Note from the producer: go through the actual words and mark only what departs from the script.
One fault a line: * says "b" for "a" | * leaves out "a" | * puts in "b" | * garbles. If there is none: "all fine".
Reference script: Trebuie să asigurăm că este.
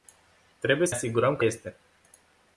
all fine